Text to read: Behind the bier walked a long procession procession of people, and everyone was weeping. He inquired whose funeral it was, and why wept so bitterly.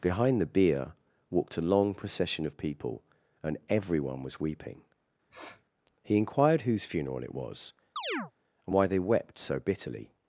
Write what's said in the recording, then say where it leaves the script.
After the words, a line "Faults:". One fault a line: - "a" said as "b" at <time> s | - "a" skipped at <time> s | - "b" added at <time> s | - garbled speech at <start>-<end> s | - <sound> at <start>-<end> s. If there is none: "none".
Behind the bier walked a long procession of people, and everyone was weeping. He inquired whose funeral it was, and why they wept so bitterly.
Faults:
- "procession" skipped at 2.4 s
- sniff at 5.3-5.6 s
- chirp at 8.0-8.3 s
- "they" added at 8.9 s